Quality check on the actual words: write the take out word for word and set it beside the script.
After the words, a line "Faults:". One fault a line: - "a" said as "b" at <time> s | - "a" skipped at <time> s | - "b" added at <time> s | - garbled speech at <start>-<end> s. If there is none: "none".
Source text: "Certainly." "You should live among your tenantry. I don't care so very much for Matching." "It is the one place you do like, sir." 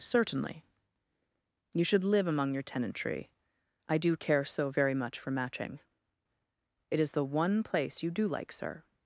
"Certainly." "You should live among your tenantry. I do care so very much for Matching." "It is the one place you do like, sir."
Faults:
- "don't" said as "do" at 4.0 s